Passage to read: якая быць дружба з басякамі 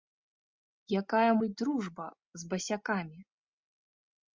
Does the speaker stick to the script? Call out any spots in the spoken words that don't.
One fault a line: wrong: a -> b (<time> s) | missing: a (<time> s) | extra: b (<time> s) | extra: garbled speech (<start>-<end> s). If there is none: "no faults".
no faults